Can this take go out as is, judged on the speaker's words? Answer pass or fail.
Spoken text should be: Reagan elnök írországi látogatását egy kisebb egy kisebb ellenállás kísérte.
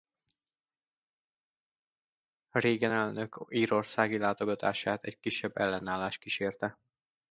fail